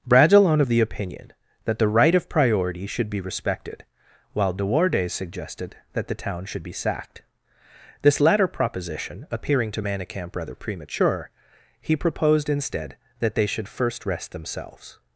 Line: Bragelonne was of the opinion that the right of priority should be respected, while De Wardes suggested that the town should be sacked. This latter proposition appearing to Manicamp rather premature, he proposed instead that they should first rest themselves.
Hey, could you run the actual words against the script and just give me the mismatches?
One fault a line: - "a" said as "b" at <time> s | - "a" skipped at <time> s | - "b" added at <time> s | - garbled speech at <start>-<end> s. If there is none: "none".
- "was" skipped at 0.6 s